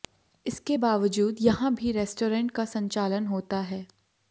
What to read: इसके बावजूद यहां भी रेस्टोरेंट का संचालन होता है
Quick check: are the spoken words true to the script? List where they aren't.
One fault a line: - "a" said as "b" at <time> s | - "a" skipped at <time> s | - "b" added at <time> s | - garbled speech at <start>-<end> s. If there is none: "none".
none